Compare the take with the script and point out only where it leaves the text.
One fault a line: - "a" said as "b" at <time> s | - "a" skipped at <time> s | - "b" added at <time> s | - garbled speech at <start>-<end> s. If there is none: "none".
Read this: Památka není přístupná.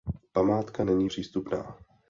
none